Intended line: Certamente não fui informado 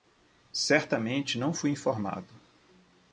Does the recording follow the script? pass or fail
pass